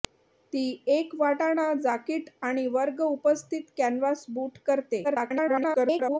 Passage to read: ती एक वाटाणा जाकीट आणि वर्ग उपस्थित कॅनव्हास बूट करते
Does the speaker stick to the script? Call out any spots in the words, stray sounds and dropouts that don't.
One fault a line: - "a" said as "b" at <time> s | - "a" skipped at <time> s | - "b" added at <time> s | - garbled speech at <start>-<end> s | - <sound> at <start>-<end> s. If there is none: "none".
- garbled speech at 5.0-6.2 s